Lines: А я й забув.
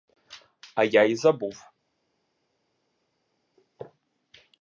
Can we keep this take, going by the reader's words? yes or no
yes